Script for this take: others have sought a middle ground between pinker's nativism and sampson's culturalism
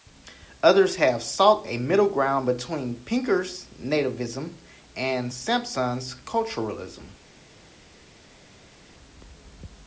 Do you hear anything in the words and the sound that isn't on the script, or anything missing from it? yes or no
no